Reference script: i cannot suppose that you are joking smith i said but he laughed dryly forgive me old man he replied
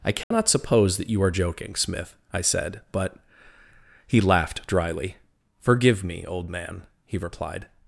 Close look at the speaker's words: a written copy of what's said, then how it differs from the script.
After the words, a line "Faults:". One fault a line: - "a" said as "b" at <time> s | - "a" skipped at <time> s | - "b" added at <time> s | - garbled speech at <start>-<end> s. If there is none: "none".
i cannot suppose that you are joking smith i said but he laughed dryly forgive me old man he replied
Faults:
none